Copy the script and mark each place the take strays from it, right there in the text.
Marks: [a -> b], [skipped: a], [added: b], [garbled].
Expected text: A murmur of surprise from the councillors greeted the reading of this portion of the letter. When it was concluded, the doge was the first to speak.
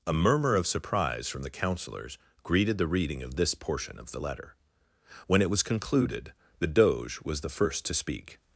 A murmur of surprise from the councillors greeted the reading of this portion of the letter. When it was concluded, the doge was the first to speak.